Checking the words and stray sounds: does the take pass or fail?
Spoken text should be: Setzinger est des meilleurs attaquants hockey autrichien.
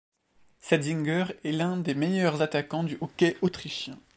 fail